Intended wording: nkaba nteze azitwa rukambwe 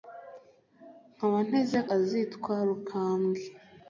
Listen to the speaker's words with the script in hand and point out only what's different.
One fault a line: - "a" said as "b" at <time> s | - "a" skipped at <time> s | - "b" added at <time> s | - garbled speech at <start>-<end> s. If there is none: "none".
none